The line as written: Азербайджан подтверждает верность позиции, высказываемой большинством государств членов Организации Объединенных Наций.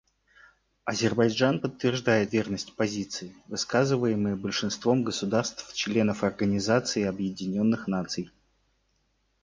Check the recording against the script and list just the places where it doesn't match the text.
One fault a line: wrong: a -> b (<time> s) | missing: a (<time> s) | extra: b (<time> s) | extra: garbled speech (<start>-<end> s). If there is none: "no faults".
no faults